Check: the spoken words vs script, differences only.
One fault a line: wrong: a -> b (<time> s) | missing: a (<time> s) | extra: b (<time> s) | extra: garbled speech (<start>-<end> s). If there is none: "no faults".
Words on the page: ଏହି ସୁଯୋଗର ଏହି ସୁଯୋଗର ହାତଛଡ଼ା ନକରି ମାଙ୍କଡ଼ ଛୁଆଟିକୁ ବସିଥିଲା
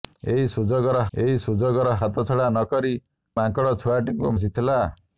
no faults